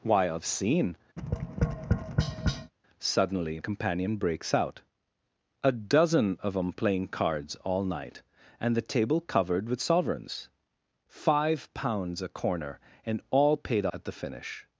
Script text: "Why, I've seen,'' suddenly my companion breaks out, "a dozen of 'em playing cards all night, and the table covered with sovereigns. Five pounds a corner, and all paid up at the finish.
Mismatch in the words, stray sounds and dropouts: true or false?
true